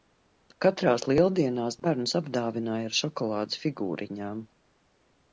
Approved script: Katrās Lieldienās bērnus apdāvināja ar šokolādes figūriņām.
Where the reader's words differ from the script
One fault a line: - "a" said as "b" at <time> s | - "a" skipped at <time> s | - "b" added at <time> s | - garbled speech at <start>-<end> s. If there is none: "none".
none